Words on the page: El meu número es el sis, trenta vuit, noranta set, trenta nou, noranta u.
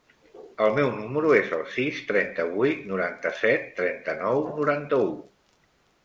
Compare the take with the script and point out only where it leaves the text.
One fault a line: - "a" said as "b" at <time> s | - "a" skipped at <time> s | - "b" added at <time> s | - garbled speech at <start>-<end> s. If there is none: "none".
none